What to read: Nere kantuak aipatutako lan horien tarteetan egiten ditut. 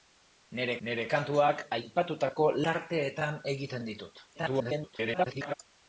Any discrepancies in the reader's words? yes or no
yes